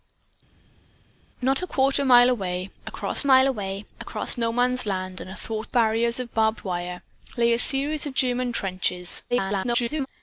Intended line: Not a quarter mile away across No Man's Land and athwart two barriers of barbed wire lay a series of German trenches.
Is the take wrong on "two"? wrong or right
wrong